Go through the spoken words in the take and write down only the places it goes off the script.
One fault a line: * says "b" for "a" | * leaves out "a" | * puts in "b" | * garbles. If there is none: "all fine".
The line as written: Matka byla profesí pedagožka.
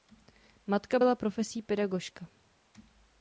all fine